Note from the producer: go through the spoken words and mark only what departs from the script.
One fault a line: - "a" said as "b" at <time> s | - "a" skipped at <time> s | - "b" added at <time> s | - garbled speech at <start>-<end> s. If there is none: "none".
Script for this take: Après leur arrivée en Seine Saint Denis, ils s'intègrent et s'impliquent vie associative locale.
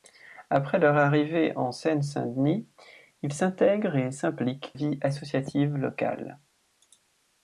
none